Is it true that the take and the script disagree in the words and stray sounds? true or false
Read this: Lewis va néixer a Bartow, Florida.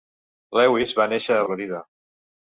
true